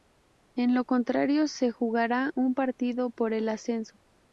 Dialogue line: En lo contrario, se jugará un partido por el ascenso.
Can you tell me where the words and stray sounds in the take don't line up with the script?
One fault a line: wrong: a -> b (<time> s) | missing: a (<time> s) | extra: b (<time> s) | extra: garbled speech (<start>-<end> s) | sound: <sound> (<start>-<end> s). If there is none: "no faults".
no faults